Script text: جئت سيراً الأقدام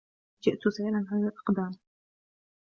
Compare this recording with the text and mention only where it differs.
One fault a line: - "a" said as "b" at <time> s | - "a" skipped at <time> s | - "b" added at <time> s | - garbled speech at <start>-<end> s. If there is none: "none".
- "على" added at 1.1 s